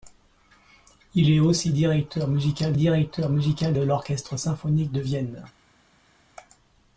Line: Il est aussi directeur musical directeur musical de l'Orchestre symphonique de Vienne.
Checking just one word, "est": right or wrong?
right